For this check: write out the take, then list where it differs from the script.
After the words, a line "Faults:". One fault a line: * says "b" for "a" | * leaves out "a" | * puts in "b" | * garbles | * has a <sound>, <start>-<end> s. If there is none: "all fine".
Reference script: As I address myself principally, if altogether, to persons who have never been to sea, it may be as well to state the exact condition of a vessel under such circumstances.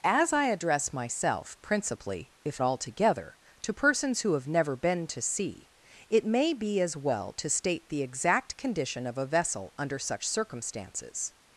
As I address myself principally, if altogether, to persons who have never been to sea, it may be as well to state the exact condition of a vessel under such circumstances.
Faults:
all fine